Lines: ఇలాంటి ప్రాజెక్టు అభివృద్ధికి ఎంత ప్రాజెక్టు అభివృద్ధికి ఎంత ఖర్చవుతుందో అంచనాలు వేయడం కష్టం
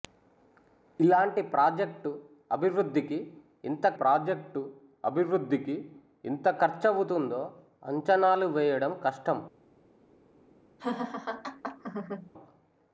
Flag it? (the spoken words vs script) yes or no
no